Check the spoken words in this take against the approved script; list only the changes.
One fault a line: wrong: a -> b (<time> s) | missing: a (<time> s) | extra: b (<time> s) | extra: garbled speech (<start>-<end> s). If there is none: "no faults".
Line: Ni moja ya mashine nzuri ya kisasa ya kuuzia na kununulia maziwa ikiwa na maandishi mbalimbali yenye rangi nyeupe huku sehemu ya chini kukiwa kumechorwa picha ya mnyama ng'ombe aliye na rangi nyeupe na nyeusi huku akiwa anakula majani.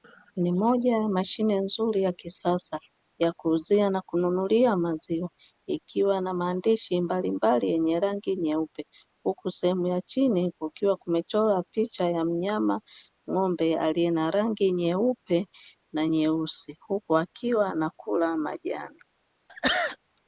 no faults